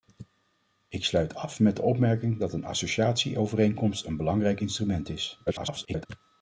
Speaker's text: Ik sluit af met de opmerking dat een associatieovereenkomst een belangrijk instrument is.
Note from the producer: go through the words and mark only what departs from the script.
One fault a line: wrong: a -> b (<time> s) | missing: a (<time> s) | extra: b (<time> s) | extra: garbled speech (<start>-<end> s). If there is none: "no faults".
extra: garbled speech (5.5-6.1 s)